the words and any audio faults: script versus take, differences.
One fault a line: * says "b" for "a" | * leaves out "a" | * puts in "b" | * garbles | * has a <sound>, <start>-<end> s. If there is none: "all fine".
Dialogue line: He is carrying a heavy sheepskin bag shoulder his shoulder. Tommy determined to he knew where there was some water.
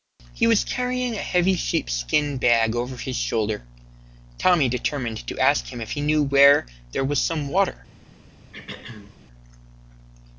* says "was" for "is"
* says "over" for "shoulder"
* puts in "ask him if"
* has a throat clearing, 8.5-9.2 s